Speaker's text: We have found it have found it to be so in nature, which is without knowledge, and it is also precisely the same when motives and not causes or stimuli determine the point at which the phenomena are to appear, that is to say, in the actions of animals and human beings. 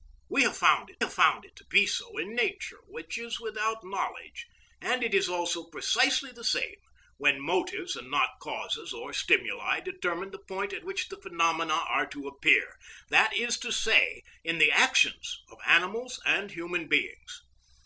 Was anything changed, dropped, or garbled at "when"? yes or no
no